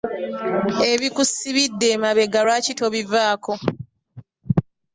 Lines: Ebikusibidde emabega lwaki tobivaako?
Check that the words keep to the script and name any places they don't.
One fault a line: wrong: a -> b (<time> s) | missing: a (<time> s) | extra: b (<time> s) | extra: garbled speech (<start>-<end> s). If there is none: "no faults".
no faults